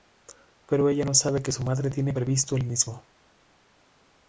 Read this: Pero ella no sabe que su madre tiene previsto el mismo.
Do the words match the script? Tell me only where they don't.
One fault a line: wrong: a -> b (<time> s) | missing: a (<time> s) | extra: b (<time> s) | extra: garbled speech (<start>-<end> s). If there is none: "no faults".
no faults